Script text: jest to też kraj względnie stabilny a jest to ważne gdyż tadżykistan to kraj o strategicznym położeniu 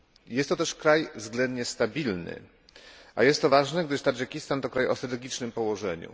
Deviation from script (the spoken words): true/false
false